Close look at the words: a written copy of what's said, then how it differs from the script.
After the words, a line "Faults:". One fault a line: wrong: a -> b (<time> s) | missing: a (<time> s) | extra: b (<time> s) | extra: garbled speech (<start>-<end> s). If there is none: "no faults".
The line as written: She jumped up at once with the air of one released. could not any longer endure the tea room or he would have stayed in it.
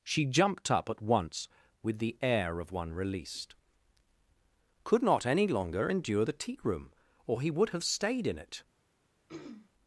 She jumped up at once with the air of one released. could not any longer endure the tea room or he would have stayed in it.
Faults:
no faults